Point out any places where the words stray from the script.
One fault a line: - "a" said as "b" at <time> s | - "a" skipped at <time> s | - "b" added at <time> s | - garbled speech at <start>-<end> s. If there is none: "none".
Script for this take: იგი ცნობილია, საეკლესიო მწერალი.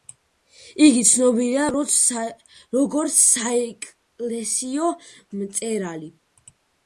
- "როგორც" added at 2.8 s